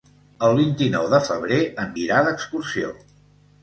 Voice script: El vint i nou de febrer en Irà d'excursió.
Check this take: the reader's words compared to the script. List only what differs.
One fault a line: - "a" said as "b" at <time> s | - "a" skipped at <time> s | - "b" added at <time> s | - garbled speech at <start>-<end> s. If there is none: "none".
none